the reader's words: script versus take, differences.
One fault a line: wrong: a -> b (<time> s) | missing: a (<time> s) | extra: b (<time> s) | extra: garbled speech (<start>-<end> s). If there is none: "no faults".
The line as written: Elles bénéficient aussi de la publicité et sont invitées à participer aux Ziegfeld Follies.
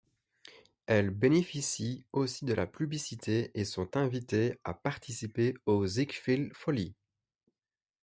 no faults